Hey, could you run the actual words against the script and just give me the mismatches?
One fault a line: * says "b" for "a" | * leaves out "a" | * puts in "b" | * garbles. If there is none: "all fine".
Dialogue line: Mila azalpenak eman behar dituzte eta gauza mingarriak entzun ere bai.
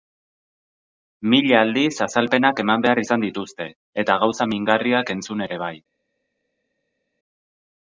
* puts in "aldiz"
* puts in "izan"